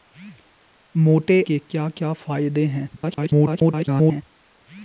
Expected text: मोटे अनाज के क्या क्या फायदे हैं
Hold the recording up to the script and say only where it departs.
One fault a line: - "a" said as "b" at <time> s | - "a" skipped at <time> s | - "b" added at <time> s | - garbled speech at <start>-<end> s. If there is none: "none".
- "अनाज" skipped at 1.4 s
- garbled speech at 3.0-4.2 s